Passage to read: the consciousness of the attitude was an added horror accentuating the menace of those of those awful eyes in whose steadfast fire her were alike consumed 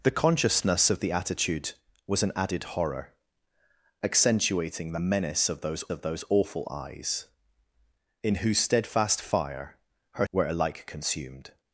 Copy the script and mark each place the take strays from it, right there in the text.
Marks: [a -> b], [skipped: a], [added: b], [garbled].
the consciousness of the attitude was an added horror accentuating the menace of those of those awful eyes in whose steadfast fire her were alike consumed